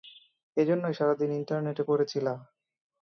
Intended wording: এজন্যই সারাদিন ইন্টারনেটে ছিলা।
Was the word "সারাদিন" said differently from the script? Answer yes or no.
no